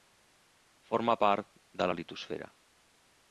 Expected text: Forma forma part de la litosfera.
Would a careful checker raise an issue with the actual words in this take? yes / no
yes